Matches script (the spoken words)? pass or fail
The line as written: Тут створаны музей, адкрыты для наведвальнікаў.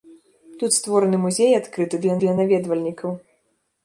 fail